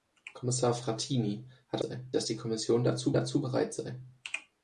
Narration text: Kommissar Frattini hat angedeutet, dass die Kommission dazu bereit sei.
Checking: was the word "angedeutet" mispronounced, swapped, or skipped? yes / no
yes